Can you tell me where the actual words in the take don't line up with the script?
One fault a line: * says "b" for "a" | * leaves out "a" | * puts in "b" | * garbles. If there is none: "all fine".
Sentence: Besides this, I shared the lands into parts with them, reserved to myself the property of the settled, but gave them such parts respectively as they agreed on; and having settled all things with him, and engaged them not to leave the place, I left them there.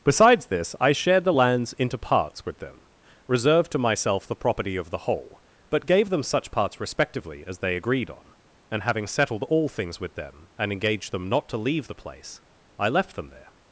* says "whole" for "settled"
* says "them" for "him"